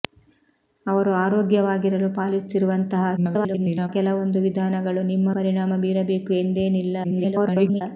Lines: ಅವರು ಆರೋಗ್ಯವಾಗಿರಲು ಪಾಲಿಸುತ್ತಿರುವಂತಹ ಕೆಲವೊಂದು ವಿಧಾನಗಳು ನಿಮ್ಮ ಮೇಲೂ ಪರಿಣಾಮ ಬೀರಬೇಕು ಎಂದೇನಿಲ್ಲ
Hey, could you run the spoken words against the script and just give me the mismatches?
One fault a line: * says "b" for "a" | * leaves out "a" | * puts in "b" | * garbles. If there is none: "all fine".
* garbles
* leaves out "ಮೇಲೂ"
* garbles